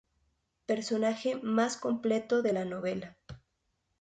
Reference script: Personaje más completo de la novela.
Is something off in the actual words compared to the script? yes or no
no